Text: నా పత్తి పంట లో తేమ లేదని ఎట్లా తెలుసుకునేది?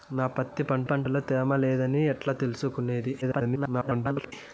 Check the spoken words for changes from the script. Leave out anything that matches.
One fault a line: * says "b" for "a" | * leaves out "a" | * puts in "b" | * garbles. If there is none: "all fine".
* puts in "పంట"
* garbles